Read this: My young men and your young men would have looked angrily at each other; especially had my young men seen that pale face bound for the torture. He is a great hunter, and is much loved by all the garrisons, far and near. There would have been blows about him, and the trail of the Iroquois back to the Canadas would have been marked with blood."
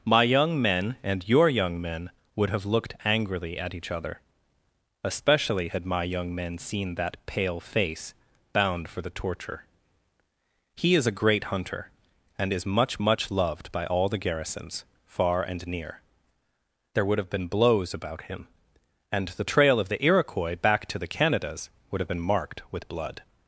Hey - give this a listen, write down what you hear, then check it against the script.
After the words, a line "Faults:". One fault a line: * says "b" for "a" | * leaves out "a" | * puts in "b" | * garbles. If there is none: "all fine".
My young men and your young men would have looked angrily at each other; especially had my young men seen that pale face bound for the torture. He is a great hunter, and is much much loved by all the garrisons, far and near. There would have been blows about him, and the trail of the Iroquois back to the Canadas would have been marked with blood."
Faults:
* puts in "much"